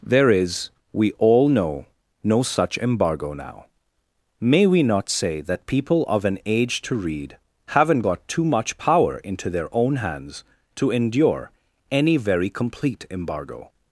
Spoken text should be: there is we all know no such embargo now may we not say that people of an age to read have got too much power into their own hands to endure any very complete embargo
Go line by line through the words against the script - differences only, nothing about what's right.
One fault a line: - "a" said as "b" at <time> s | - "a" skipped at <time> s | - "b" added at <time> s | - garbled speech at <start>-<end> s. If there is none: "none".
- "have" said as "haven't" at 7.7 s